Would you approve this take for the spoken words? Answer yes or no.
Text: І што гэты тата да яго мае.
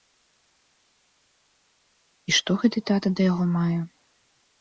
yes